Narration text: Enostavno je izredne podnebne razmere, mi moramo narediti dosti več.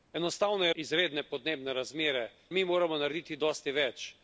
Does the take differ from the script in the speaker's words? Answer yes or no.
no